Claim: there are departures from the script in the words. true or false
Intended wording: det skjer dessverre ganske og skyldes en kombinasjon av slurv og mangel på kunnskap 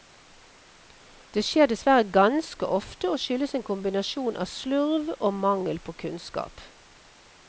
true